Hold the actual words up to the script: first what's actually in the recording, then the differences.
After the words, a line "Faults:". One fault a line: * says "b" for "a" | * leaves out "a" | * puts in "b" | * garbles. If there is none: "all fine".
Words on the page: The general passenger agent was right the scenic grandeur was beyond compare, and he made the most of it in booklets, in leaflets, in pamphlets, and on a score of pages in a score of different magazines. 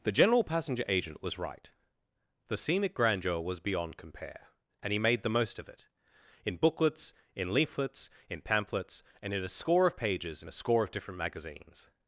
The general passenger agent was right the scenic grandeur was beyond compare, and he made the most of it in booklets, in leaflets, in pamphlets, and in a score of pages in a score of different magazines.
Faults:
* says "in" for "on"